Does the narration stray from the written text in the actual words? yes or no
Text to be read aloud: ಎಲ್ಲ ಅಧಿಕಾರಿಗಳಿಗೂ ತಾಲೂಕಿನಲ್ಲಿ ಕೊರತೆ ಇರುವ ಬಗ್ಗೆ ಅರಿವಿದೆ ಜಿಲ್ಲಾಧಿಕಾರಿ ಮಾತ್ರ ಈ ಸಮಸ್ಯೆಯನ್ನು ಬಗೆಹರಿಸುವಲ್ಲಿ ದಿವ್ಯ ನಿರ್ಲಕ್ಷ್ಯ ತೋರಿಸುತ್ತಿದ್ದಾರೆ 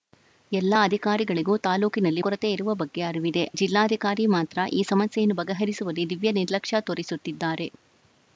no